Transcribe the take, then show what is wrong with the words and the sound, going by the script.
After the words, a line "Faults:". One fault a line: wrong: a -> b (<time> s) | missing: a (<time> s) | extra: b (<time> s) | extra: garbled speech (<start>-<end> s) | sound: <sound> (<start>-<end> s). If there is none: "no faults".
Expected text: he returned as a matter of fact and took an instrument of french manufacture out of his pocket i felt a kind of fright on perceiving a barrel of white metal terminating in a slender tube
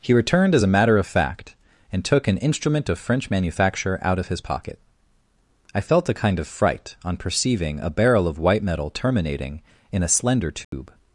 he returned as a matter of fact and took an instrument of french manufacture out of his pocket i felt a kind of fright on perceiving a barrel of white metal terminating in a slender tube
Faults:
sound: dropout (10.6-10.7 s)